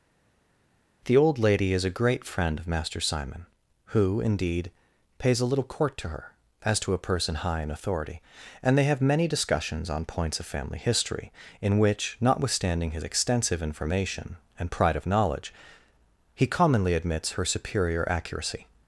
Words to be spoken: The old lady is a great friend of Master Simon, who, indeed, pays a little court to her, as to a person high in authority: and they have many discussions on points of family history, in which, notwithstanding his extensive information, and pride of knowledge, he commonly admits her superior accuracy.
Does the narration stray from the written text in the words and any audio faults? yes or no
no